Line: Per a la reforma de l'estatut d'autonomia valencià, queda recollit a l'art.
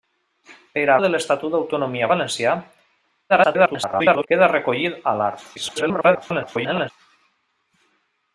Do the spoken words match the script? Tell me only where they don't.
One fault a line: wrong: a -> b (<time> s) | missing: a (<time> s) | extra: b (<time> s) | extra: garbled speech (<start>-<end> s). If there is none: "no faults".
missing: la reforma (0.9 s)
extra: garbled speech (3.3-4.3 s)
extra: garbled speech (5.6-6.9 s)